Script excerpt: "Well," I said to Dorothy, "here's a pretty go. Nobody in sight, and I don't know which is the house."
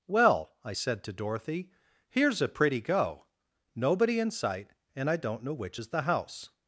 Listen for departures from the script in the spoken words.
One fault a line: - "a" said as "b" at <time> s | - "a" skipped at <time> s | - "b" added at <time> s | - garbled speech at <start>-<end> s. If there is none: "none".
none